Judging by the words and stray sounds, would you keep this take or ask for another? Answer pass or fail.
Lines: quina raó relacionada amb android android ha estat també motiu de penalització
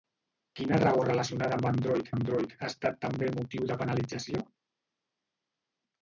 pass